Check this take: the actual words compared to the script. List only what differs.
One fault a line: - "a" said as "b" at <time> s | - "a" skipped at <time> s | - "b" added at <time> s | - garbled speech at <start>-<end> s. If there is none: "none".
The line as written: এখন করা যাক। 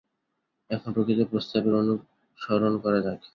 - "প্রকৃত প্রস্তাবের অনুসরণ" added at 0.9 s